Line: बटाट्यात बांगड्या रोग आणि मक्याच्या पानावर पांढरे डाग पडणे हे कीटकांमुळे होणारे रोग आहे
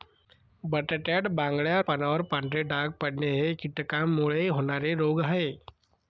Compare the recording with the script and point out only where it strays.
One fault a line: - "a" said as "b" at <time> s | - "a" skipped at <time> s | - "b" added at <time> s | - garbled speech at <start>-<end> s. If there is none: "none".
- "रोग आणि मक्याच्या" skipped at 1.8 s